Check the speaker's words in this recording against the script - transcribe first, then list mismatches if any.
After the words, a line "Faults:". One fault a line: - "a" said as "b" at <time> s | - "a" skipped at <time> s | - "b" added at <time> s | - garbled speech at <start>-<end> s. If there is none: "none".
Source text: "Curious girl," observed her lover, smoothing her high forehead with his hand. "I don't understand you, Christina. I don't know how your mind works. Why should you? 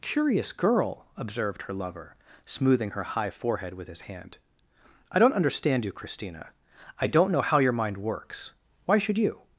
"Curious girl," observed her lover, smoothing her high forehead with his hand. "I don't understand you, Christina. I don't know how your mind works. Why should you?
Faults:
none